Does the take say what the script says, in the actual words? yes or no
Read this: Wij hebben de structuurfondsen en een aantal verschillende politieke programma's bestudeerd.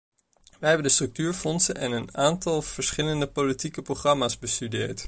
yes